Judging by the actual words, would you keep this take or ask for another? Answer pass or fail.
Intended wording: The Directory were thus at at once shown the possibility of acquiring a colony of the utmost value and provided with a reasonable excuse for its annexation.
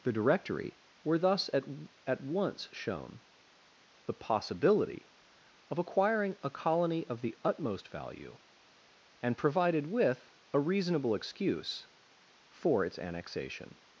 pass